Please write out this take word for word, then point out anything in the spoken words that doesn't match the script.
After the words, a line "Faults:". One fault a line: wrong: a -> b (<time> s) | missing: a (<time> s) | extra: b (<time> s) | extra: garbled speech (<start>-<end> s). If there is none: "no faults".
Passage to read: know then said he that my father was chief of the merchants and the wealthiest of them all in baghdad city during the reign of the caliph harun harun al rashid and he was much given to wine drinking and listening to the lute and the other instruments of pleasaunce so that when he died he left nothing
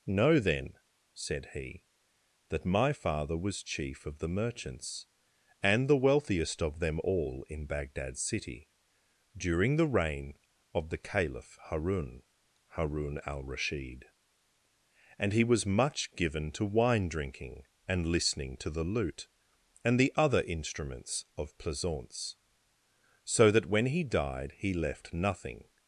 know then said he that my father was chief of the merchants and the wealthiest of them all in baghdad city during the reign of the caliph harun harun al rashid and he was much given to wine drinking and listening to the lute and the other instruments of pleasaunce so that when he died he left nothing
Faults:
no faults